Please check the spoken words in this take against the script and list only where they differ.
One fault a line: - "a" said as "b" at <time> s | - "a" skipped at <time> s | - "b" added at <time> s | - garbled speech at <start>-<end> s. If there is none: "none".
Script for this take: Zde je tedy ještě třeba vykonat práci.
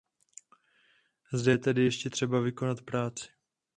none